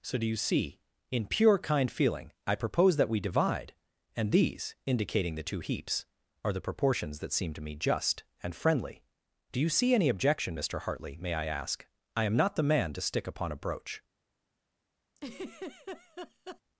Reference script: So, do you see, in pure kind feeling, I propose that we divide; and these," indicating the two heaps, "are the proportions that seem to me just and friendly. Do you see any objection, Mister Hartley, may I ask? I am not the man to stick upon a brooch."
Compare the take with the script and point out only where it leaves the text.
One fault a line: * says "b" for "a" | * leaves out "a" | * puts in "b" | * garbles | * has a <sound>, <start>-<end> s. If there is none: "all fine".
* has a laugh, 15.2-16.6 s